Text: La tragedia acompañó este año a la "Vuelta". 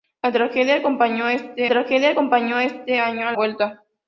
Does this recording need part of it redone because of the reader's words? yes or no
yes